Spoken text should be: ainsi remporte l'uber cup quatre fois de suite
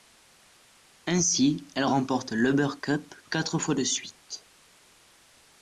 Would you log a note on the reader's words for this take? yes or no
yes